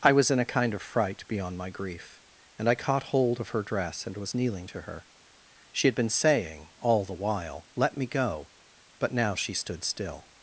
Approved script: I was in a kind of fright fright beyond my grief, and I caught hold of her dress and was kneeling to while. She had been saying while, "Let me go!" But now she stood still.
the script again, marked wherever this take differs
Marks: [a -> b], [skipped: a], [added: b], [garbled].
I was in a kind of fright [skipped: fright] beyond my grief, and I caught hold of her dress and was kneeling to [while. -> her] She had been saying [added: all the] while, "Let me go!" But now she stood still.